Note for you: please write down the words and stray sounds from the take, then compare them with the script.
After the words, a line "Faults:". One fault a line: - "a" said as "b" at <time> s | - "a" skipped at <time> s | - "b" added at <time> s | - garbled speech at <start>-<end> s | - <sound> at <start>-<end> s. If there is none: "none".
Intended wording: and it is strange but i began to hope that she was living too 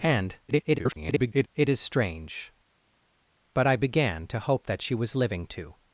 and [garbled] it is strange but i began to hope that she was living too
Faults:
- garbled speech at 0.5-1.5 s